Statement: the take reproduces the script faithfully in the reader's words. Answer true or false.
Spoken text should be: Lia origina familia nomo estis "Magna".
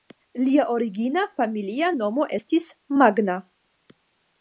true